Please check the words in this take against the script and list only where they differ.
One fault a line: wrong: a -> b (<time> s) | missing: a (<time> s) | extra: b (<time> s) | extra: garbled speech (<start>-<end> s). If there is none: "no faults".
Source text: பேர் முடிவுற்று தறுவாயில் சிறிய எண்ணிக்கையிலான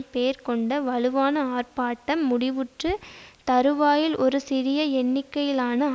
extra: கொண்ட வலுவான ஆர்ப்பாட்டம் (0.5 s)
extra: ஒரு (4.2 s)